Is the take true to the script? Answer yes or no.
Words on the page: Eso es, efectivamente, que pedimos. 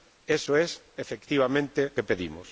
yes